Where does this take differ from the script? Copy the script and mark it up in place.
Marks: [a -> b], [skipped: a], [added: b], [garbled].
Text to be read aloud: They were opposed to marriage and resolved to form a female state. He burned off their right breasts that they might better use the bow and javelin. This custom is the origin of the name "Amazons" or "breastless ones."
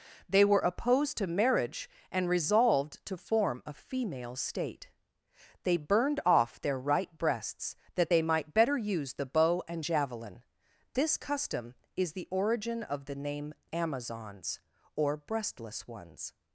They were opposed to marriage and resolved to form a female state. [He -> They] burned off their right breasts that they might better use the bow and javelin. This custom is the origin of the name "Amazons" or "breastless ones."